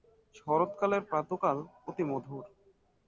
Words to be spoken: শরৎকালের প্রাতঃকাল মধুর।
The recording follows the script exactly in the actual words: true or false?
false